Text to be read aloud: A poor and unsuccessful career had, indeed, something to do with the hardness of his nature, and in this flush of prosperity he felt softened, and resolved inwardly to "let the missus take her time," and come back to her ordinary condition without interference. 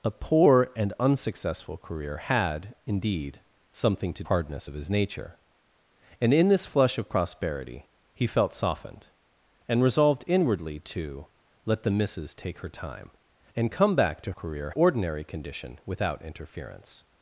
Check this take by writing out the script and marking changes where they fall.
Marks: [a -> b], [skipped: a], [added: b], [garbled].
A poor and unsuccessful career had, indeed, something to [skipped: do with the] hardness of his nature, and in this flush of prosperity he felt softened, and resolved inwardly to "let the missus take her time," and come back to [her -> career] ordinary condition without interference.